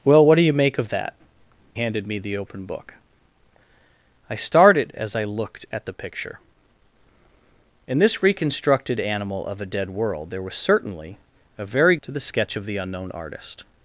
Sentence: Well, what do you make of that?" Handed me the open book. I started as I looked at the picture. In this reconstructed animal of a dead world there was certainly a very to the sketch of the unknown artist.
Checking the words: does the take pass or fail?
pass